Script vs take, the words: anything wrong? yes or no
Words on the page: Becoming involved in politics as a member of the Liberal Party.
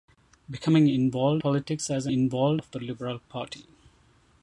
yes